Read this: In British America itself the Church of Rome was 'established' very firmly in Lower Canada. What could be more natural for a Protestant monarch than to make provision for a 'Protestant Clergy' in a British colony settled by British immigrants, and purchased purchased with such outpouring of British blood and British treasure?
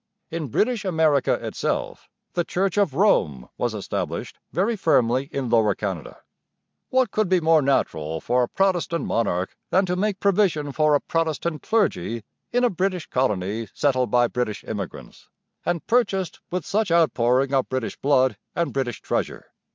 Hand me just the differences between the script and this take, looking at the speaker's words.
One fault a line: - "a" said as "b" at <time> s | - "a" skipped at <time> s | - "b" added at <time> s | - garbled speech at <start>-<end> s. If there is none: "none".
- "purchased" skipped at 16.4 s